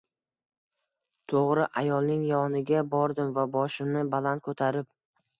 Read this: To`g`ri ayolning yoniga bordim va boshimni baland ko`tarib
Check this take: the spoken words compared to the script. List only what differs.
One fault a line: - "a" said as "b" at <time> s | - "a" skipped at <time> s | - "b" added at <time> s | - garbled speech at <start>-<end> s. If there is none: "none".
none